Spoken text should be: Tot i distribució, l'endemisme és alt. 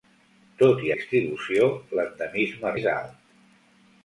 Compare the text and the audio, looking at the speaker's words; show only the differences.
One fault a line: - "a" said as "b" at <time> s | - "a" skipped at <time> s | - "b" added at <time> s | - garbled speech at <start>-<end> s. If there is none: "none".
none